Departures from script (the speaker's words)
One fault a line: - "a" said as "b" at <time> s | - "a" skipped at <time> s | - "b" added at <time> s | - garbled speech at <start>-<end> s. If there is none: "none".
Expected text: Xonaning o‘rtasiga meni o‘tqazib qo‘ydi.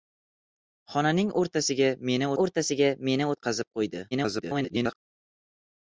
- "o‘rtasiga meni" added at 2.4 s
- garbled speech at 4.1-5.0 s